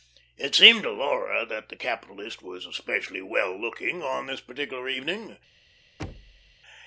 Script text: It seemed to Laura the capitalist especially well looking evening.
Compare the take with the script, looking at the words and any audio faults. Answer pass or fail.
fail